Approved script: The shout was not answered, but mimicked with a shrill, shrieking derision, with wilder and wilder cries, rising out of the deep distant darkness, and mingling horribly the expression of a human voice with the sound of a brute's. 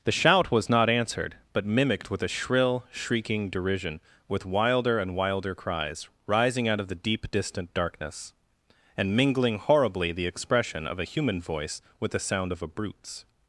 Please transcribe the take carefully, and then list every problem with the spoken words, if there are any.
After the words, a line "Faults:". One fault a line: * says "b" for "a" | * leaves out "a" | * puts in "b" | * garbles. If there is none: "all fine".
The shout was not answered, but mimicked with a shrill, shrieking derision, with wilder and wilder cries, rising out of the deep distant darkness, and mingling horribly the expression of a human voice with the sound of a brute's.
Faults:
all fine